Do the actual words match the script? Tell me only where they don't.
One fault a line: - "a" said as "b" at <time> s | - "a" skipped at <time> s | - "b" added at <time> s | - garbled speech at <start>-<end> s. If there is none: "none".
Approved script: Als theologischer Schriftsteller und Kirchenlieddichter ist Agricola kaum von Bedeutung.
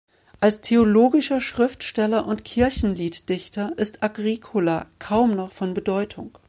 - "noch" added at 5.3 s